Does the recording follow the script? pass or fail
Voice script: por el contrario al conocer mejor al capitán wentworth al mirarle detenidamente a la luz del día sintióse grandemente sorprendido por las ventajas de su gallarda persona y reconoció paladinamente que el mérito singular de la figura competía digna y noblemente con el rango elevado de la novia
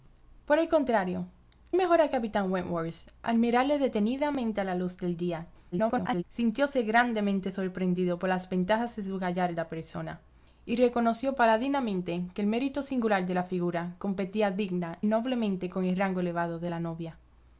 fail